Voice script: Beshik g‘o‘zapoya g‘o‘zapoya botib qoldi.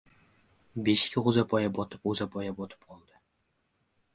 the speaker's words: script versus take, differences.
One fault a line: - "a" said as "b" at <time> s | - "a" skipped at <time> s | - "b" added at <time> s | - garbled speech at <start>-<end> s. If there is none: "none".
- "botib" added at 1.8 s